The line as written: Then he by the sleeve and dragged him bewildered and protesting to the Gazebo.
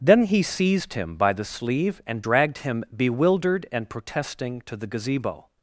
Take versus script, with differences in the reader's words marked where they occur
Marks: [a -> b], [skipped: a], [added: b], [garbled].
Then he [added: seized him] by the sleeve and dragged him bewildered and protesting to the Gazebo.